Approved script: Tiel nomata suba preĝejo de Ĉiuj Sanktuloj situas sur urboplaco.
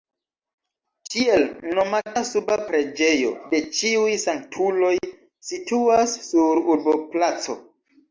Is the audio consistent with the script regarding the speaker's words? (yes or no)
yes